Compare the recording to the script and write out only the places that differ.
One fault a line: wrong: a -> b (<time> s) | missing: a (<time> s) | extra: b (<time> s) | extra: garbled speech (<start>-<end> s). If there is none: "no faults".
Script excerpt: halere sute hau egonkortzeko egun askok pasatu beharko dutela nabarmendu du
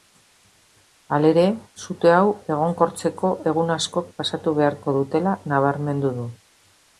no faults